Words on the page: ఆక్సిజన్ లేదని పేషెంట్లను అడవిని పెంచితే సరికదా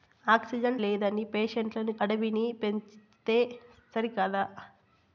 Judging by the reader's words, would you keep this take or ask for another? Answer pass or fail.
pass